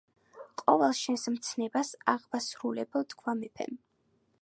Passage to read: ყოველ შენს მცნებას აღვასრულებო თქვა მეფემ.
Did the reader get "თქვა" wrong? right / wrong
right